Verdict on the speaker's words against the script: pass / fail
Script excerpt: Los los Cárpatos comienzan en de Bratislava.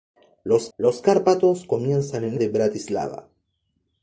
pass